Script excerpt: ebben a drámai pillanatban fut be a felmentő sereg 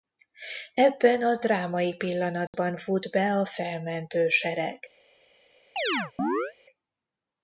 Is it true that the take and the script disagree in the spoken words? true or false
false